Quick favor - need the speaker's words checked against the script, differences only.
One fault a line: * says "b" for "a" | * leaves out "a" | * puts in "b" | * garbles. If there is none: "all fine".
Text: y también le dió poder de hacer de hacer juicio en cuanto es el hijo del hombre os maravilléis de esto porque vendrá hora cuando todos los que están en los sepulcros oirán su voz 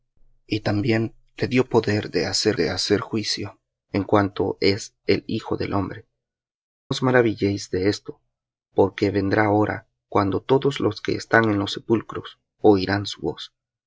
all fine